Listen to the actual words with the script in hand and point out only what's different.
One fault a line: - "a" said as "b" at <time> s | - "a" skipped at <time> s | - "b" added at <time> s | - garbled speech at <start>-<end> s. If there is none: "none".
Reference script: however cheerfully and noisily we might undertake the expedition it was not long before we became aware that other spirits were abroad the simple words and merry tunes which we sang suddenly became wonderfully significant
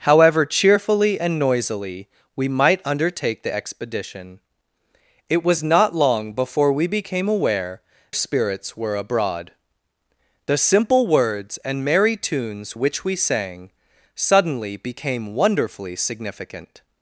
- "that other" skipped at 7.8 s